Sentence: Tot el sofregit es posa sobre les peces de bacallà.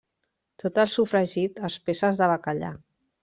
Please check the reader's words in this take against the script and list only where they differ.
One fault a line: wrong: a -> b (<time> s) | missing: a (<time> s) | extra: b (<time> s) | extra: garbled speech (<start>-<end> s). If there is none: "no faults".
missing: posa sobre les (1.8 s)